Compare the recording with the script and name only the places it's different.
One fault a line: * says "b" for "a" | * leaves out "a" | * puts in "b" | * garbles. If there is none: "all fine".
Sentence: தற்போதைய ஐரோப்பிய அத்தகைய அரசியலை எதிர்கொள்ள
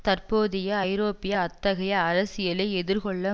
all fine